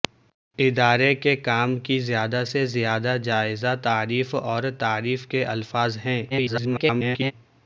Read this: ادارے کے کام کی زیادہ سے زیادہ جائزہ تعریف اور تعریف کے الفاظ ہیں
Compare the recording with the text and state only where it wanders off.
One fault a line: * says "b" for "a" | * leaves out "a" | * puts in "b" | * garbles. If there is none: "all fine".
* garbles